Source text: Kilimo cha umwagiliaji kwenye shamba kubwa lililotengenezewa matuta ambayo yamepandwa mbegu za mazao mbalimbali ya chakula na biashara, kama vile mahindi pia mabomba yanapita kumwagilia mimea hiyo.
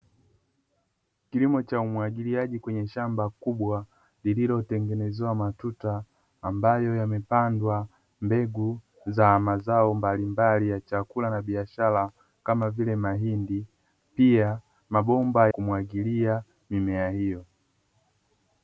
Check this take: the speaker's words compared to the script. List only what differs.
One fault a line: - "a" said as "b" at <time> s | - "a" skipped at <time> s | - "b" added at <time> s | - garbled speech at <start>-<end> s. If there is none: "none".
- "yanapita" skipped at 15.5 s